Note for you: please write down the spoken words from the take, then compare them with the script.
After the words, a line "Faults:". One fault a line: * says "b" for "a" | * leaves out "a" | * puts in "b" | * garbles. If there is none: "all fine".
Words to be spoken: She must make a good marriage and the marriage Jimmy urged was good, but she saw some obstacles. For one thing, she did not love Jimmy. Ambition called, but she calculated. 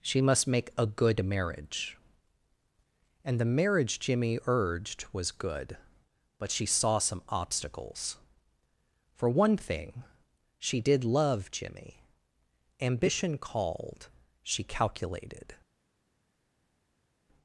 She must make a good marriage and the marriage Jimmy urged was good, but she saw some obstacles. For one thing, she did love Jimmy. Ambition called, she calculated.
Faults:
* leaves out "not"
* leaves out "but"